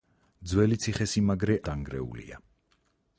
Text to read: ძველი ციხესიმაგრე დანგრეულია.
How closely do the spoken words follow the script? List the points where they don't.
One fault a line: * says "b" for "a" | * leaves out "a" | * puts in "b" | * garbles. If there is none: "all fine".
all fine